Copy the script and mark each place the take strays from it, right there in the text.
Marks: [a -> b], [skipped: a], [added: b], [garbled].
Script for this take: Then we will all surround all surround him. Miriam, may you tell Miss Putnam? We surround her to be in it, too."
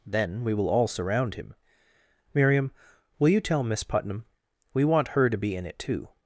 Then we will all surround [skipped: all surround] him. Miriam, [may -> will] you tell Miss Putnam? We [surround -> want] her to be in it, too."